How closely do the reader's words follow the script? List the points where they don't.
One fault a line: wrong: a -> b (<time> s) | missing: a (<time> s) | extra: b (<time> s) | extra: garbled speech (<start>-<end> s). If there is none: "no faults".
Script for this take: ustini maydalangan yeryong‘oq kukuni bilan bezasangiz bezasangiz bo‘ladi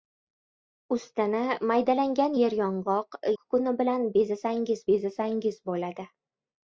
no faults